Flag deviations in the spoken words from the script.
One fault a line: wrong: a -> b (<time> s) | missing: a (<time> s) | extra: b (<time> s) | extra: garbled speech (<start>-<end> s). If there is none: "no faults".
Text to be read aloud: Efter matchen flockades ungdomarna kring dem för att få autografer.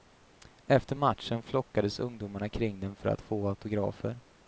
no faults